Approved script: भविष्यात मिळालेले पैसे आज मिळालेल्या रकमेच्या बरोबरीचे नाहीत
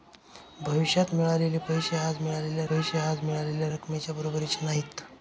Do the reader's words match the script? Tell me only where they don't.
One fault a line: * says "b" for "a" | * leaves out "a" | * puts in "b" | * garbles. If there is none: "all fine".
* puts in "पैसे आज मिळालेल्या"